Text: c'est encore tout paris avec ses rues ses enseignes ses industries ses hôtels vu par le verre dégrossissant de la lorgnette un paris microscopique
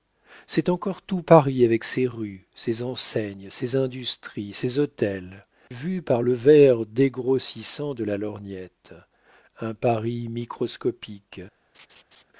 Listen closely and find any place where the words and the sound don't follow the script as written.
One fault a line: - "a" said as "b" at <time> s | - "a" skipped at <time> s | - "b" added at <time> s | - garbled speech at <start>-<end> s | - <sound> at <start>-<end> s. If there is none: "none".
- laugh at 11.7-12.2 s